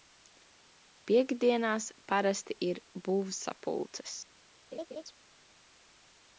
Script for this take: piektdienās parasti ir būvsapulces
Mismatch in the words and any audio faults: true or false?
true